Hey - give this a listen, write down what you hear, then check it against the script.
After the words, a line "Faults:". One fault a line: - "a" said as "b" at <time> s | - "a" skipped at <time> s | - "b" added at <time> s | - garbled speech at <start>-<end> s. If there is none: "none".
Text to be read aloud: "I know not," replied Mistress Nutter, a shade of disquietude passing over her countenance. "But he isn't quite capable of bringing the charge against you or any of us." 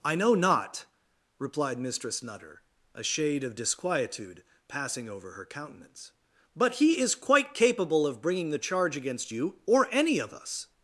"I know not," replied Mistress Nutter, a shade of disquietude passing over her countenance. "But he is quite capable of bringing the charge against you or any of us."
Faults:
- "isn't" said as "is" at 7.0 s